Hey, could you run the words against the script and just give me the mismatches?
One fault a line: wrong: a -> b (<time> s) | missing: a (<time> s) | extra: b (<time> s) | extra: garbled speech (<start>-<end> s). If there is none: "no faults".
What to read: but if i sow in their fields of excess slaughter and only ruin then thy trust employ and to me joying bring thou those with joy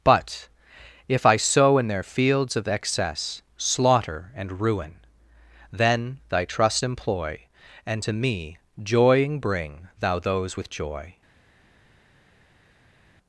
missing: only (4.6 s)